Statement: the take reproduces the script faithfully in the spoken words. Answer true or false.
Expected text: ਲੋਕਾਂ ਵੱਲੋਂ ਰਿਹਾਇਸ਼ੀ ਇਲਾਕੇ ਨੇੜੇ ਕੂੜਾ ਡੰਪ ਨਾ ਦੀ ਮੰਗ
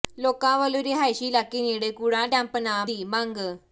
true